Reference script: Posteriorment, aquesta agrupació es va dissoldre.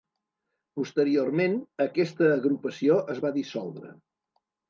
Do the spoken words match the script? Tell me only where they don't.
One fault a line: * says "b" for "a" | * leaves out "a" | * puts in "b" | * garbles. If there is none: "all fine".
all fine